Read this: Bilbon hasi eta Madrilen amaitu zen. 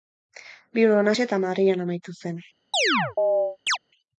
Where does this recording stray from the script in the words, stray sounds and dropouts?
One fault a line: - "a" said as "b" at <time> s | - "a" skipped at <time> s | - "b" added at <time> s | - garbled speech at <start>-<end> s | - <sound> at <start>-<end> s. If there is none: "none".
- chirp at 2.7-3.8 s